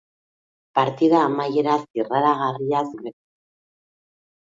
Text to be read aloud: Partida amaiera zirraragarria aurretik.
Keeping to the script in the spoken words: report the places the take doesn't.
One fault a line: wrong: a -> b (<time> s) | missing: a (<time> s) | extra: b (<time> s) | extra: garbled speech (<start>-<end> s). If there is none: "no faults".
no faults